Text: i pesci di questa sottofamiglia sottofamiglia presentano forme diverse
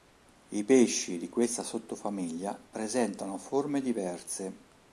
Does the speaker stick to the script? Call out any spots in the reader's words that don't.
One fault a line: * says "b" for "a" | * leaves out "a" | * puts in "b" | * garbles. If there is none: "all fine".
* leaves out "sottofamiglia"